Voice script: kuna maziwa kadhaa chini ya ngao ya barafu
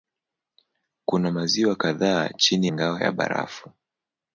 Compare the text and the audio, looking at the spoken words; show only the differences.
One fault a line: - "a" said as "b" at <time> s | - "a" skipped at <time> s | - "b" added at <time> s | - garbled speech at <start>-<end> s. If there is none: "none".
- "ya" skipped at 2.7 s